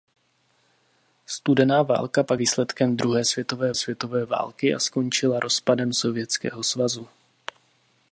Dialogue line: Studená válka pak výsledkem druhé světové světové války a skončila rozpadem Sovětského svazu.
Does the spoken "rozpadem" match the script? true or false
true